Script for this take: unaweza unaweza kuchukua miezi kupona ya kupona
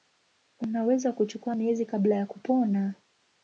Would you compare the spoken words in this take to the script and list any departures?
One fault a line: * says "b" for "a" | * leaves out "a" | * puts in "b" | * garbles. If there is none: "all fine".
* leaves out "unaweza"
* says "kabla" for "kupona"